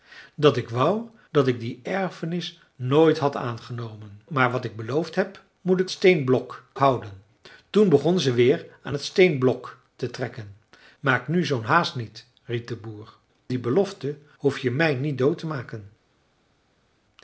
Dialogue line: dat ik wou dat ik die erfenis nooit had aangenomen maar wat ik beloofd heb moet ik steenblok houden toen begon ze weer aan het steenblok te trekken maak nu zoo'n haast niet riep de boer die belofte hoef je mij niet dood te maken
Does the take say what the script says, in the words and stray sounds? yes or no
yes